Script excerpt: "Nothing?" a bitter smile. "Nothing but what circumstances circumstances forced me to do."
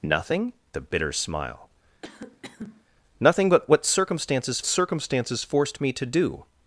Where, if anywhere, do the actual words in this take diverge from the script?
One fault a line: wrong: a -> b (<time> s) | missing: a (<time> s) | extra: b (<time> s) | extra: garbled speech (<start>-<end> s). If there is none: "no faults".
no faults